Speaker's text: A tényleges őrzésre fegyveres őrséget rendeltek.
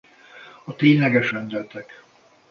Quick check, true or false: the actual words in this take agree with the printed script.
false